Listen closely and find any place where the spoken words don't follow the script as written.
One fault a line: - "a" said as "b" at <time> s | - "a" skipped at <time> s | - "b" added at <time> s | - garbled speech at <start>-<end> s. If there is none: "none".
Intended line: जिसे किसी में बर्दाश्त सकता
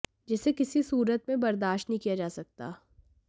- "सूरत" added at 0.8 s
- "नहीं किया जा" added at 1.9 s